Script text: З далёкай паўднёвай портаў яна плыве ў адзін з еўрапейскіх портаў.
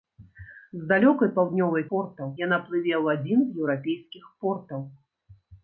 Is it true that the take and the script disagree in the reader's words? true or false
false